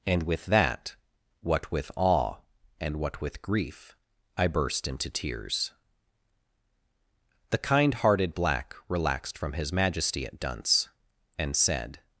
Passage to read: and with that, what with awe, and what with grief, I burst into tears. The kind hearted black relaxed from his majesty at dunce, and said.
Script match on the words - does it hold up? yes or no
yes